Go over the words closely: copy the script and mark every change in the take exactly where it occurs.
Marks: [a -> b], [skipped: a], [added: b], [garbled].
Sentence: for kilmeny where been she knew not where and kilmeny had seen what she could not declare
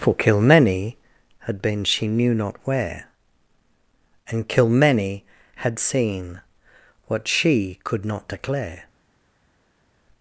for kilmeny [where -> had] been she knew not where and kilmeny had seen what she could not declare